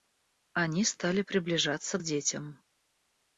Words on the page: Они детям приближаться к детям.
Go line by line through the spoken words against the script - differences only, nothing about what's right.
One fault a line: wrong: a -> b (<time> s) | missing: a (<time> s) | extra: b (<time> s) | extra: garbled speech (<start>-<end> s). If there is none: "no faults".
wrong: детям -> стали (0.8 s)